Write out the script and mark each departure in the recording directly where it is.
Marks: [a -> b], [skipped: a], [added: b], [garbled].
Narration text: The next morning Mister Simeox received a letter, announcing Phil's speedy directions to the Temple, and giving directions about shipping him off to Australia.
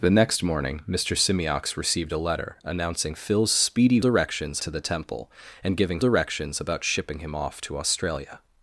The next morning Mister Simeox received a letter, announcing Phil's speedy directions to the Temple, and giving directions about shipping him off to Australia.